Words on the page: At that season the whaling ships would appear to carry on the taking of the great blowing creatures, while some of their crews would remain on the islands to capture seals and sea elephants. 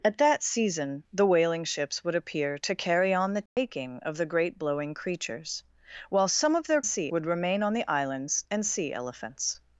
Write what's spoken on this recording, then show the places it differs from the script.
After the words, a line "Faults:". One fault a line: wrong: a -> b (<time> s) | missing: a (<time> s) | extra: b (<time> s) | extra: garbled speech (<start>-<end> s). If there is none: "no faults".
At that season the whaling ships would appear to carry on the taking of the great blowing creatures, while some of their sea would remain on the islands and sea elephants.
Faults:
wrong: crews -> sea (6.8 s)
missing: to capture seals (8.4 s)